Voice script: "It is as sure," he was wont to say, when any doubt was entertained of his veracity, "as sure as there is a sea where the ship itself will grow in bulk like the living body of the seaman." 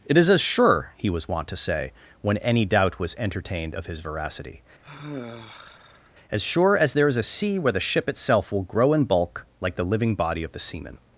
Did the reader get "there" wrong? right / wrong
right